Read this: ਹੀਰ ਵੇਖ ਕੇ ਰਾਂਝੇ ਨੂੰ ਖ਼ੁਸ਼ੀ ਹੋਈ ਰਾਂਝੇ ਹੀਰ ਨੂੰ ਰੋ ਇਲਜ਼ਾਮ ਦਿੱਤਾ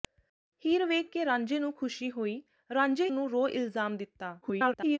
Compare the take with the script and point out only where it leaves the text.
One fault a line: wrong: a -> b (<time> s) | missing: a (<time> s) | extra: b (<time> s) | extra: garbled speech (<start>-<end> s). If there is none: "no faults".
missing: ਹੀਰ (3.1 s)
extra: garbled speech (4.4-5.0 s)